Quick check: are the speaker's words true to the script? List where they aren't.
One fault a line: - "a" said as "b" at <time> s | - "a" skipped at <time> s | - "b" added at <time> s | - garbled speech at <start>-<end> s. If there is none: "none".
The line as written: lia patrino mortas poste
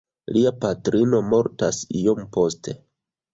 - "iom" added at 2.0 s